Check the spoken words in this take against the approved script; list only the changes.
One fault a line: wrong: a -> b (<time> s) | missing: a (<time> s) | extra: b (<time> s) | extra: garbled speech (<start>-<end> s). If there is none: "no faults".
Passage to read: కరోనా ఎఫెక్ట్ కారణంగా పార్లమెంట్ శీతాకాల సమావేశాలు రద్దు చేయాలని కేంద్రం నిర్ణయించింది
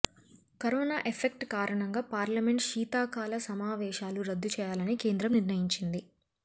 no faults